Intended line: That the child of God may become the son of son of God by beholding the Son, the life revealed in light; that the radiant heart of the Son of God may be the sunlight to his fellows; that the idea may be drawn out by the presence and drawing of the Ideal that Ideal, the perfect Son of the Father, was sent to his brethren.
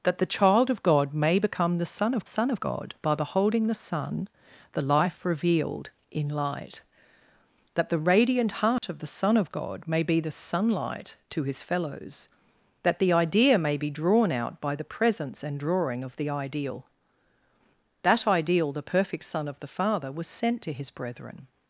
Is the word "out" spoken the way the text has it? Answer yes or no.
yes